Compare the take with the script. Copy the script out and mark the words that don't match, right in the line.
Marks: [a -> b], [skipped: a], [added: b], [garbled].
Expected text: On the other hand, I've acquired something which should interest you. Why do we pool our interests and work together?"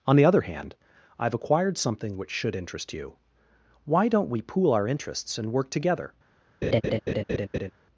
On the other hand, I've acquired something which should interest you. Why [do -> don't] we pool our interests and work together?"